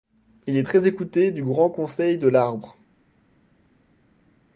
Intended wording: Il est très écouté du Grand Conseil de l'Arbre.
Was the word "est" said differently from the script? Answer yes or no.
no